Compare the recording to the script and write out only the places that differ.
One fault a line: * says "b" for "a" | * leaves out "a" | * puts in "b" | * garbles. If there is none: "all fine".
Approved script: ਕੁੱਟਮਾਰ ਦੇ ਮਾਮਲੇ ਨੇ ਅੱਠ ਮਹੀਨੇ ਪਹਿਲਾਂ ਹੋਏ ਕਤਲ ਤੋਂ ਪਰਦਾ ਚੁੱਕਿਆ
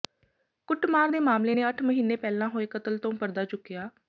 all fine